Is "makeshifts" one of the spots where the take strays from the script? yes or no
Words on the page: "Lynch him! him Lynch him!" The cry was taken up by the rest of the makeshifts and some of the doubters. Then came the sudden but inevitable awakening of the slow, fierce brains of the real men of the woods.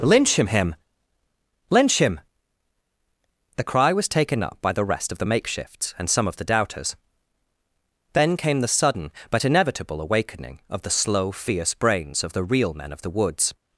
no